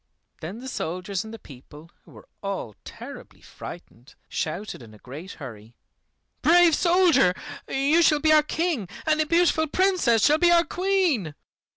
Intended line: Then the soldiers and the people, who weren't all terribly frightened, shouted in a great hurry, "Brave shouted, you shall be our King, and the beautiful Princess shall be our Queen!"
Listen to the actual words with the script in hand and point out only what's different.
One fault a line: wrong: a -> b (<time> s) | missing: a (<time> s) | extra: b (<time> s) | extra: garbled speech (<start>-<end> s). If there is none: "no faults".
wrong: weren't -> were (2.1 s)
wrong: shouted -> soldier (6.7 s)